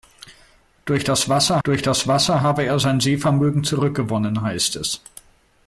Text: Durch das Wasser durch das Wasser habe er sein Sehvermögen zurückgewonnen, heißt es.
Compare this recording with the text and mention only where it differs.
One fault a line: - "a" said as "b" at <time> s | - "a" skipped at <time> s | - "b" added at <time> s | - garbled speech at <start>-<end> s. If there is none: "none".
none